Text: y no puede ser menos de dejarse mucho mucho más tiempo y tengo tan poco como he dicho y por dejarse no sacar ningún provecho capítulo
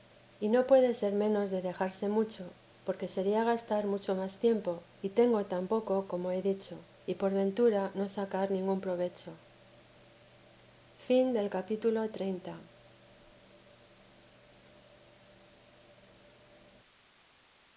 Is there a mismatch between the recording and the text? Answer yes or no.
yes